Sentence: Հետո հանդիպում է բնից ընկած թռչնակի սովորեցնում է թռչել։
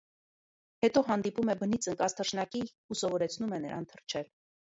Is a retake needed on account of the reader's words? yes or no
yes